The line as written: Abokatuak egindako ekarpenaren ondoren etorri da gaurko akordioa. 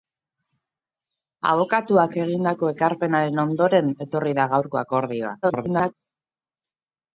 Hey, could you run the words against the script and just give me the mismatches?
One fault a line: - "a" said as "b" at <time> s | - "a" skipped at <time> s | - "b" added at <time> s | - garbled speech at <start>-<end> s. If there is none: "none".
- garbled speech at 5.4-5.9 s